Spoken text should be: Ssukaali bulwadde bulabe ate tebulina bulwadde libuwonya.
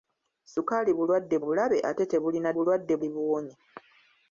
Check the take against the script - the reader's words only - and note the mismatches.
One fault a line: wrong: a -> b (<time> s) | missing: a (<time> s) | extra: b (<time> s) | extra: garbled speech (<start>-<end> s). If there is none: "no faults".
no faults